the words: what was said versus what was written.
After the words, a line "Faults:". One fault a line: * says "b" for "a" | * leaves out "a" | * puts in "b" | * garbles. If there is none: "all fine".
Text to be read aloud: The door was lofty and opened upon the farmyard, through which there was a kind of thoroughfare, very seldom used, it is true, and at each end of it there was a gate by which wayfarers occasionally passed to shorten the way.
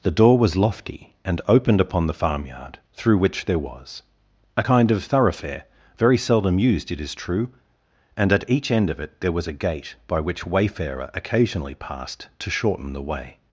The door was lofty and opened upon the farmyard, through which there was a kind of thoroughfare, very seldom used, it is true, and at each end of it there was a gate by which wayfarer occasionally passed to shorten the way.
Faults:
* says "wayfarer" for "wayfarers"